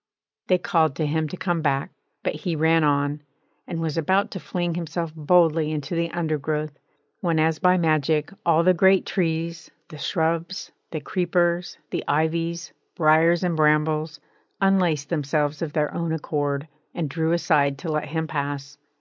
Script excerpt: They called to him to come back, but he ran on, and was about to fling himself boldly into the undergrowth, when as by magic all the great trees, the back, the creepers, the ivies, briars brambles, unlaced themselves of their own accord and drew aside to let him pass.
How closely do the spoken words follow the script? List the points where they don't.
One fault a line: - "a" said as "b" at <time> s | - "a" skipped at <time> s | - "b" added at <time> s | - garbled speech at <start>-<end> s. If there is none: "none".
- "back" said as "shrubs" at 10.0 s
- "and" added at 13.4 s